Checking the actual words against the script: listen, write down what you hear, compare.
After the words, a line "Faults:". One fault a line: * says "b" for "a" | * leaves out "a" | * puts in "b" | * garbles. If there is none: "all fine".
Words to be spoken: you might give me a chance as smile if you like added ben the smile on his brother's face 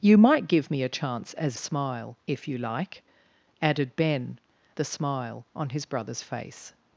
you might give me a chance as smile if you like added ben the smile on his brother's face
Faults:
all fine